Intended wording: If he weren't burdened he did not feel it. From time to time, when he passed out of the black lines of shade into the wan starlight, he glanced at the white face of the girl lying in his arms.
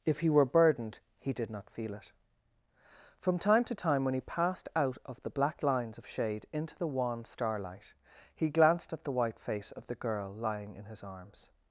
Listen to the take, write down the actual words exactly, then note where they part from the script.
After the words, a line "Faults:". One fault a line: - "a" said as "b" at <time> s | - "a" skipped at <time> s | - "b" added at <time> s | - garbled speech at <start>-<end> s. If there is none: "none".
If he were burdened he did not feel it. From time to time, when he passed out of the black lines of shade into the wan starlight, he glanced at the white face of the girl lying in his arms.
Faults:
- "weren't" said as "were" at 0.3 s